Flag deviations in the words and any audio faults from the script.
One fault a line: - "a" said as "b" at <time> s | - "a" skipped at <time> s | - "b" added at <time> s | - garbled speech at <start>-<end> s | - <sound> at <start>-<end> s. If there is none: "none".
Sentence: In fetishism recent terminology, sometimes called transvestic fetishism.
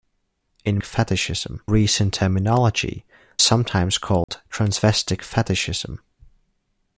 - dropout at 4.2-4.3 s